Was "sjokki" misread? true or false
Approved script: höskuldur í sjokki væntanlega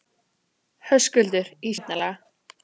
true